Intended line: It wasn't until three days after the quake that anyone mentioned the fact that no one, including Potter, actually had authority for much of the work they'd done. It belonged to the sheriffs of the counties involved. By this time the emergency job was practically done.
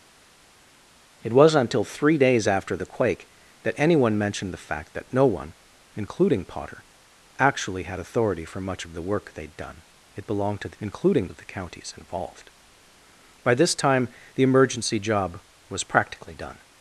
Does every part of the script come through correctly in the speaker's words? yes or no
no